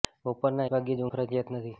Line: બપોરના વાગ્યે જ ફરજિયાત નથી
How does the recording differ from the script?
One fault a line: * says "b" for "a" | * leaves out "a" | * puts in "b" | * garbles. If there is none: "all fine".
all fine